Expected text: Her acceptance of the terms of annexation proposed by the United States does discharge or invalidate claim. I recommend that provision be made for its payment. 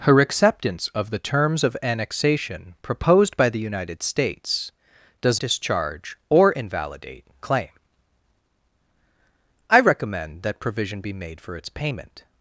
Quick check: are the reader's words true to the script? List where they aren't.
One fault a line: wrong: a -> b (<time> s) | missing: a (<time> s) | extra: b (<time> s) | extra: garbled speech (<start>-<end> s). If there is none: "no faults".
no faults